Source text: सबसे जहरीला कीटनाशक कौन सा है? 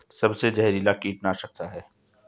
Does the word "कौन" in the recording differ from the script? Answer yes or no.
yes